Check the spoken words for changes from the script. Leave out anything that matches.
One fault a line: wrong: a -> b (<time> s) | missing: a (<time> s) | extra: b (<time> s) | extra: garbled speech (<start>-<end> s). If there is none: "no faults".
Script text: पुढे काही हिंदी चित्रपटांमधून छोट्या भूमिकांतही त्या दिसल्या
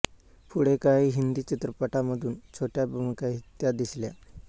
no faults